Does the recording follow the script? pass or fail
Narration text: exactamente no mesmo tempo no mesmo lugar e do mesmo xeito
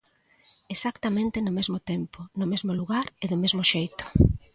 pass